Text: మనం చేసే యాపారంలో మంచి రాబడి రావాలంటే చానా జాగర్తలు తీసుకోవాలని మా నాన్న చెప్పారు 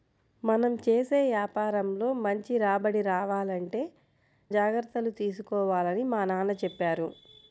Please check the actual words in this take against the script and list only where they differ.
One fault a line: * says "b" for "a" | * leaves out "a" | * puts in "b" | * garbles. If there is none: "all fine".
* leaves out "చానా"